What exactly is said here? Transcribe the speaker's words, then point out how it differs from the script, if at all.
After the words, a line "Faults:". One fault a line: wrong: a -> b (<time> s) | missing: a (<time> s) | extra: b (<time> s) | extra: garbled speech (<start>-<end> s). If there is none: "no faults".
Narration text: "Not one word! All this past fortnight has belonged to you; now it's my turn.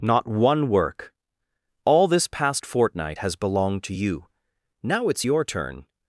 "Not one work! All this past fortnight has belonged to you; now it's your turn.
Faults:
wrong: word -> work (0.7 s)
wrong: my -> your (5.2 s)